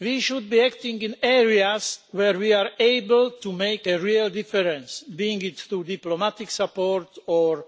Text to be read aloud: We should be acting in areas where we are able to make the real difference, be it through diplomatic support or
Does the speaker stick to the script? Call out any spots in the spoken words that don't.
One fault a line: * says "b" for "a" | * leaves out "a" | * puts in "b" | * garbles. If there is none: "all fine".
* says "a" for "the"